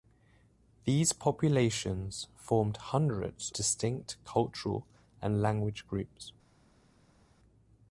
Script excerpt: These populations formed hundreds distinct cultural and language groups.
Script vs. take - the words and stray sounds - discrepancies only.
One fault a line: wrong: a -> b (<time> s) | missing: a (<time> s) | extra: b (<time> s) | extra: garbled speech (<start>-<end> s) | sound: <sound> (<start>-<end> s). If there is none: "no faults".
no faults